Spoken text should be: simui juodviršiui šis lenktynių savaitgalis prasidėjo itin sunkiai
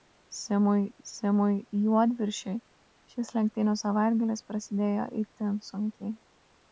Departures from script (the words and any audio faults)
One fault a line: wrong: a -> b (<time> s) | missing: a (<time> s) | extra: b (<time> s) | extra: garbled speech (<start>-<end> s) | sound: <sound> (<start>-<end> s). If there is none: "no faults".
extra: simui (1.1 s)